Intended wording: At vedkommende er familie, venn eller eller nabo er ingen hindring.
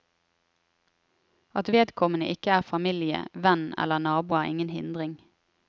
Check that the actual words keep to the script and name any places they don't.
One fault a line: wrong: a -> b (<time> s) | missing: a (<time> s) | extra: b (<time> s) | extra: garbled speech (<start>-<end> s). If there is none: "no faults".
extra: ikke (2.3 s)
missing: eller (4.0 s)